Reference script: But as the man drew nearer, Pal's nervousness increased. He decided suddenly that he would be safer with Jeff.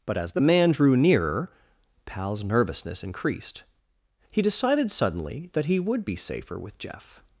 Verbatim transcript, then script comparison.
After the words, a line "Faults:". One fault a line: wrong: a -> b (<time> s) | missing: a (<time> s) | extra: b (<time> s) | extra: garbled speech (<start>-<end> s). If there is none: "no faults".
But as the man drew nearer, Pal's nervousness increased. He decided suddenly that he would be safer with Jeff.
Faults:
no faults